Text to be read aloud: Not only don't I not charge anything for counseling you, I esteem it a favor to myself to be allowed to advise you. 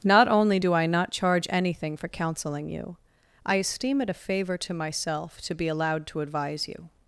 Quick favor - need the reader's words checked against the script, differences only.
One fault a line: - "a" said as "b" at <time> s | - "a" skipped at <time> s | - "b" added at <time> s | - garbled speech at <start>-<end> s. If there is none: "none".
- "don't" said as "do" at 0.6 s